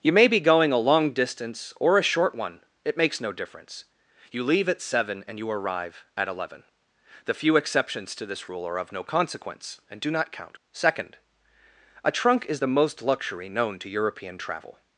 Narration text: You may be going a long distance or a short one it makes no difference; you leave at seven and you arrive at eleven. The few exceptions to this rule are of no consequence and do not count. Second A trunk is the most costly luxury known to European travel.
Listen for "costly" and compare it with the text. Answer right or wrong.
wrong